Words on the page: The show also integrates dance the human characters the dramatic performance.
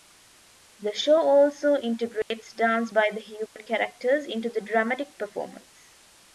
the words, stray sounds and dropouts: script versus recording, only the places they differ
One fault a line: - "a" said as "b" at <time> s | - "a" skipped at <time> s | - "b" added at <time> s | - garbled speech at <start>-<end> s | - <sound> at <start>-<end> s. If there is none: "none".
- dropout at 2.2-2.3 s
- "by" added at 2.9 s
- dropout at 3.5-3.6 s
- "into" added at 4.3 s